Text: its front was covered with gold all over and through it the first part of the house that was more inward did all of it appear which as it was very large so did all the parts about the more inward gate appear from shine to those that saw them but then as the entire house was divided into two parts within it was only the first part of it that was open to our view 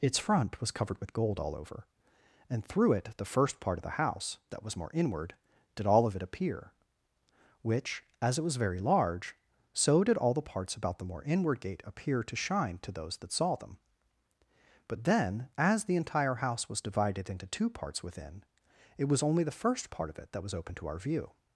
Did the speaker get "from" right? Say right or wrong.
wrong